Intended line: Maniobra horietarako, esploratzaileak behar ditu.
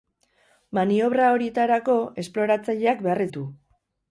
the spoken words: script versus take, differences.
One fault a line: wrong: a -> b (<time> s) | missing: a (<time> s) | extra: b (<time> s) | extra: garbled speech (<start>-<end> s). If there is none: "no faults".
no faults